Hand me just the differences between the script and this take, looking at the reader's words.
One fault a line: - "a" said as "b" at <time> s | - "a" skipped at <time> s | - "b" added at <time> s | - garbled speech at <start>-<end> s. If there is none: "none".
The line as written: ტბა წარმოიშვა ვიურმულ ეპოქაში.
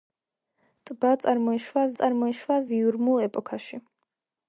- "წარმოიშვა" added at 2.0 s